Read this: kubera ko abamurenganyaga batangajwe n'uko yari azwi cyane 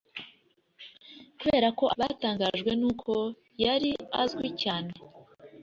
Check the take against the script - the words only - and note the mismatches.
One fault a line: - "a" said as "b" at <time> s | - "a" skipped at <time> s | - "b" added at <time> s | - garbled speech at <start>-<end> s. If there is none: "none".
- "abamurenganyaga" skipped at 1.9 s